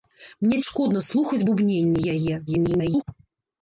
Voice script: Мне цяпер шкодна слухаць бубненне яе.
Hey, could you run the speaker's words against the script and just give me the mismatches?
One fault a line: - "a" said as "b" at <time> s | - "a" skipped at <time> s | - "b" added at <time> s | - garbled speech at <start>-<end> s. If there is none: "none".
- "цяпер" skipped at 0.6 s
- garbled speech at 2.5-3.0 s